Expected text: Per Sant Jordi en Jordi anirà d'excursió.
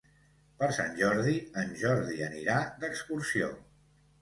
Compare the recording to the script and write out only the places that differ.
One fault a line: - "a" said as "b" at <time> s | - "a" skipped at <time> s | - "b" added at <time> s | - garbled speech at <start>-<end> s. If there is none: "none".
none